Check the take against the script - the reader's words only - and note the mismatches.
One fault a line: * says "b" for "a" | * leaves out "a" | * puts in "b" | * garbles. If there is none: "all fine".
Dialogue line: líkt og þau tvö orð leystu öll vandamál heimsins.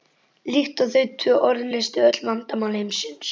all fine